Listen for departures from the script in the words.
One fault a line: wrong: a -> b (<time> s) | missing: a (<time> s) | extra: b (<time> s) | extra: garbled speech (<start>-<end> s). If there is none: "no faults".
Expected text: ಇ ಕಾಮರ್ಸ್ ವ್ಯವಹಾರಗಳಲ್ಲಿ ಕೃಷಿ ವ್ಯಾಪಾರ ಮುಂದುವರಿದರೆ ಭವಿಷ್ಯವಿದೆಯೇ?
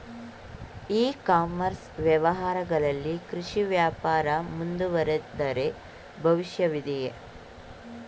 no faults